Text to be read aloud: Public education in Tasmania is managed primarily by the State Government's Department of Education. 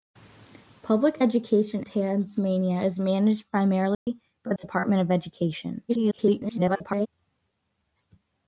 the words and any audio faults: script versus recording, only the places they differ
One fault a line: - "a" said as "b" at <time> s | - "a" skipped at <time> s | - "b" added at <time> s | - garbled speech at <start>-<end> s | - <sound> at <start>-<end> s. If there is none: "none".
- "in" skipped at 1.9 s
- dropout at 3.9-4.1 s
- "the State Government's" skipped at 4.5 s
- garbled speech at 5.9-7.1 s